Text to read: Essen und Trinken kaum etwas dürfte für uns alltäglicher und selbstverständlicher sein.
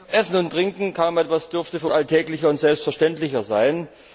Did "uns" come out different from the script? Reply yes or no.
yes